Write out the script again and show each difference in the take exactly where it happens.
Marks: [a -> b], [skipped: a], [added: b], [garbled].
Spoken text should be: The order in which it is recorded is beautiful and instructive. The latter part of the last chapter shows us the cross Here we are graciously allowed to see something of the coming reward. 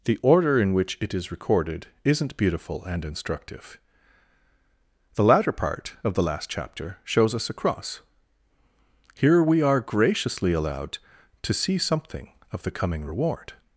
The order in which it is recorded [is -> isn't] beautiful and instructive. The latter part of the last chapter shows us [the -> a] cross Here we are graciously allowed to see something of the coming reward.